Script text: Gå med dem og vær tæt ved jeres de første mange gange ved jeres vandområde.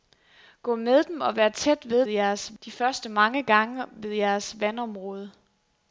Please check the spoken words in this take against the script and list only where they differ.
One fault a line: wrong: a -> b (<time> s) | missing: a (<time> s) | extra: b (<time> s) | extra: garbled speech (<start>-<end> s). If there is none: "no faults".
no faults